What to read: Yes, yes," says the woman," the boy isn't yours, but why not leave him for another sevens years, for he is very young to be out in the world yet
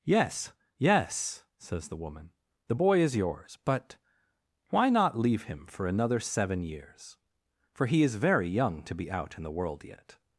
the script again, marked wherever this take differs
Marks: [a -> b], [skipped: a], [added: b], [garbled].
Yes, yes," says the woman," the boy [isn't -> is] yours, but why not leave him for another [sevens -> seven] years, for he is very young to be out in the world yet